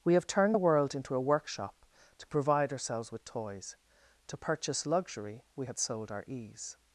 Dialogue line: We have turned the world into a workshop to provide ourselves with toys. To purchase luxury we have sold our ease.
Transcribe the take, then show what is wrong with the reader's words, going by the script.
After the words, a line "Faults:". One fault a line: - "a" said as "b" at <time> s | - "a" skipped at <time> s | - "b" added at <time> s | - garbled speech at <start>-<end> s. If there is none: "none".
We have turned the world into a workshop to provide ourselves with toys. To purchase luxury we had sold our ease.
Faults:
- "have" said as "had" at 5.6 s